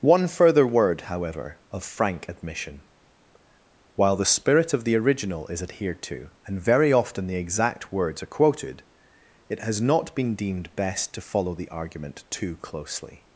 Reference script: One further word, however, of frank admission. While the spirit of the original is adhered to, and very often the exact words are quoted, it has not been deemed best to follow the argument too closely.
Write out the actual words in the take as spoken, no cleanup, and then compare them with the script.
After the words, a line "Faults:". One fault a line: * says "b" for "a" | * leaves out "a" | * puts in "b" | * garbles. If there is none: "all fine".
One further word, however, of frank admission. While the spirit of the original is adhered to, and very often the exact words are quoted, it has not been deemed best to follow the argument too closely.
Faults:
all fine